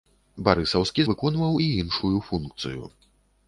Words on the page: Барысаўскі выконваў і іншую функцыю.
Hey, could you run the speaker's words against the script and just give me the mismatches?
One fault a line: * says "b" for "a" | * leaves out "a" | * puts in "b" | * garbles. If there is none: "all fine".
all fine